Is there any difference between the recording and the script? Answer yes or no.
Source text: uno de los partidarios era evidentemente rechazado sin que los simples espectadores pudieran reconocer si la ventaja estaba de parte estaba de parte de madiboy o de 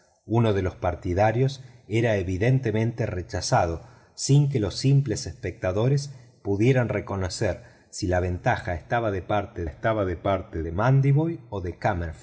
no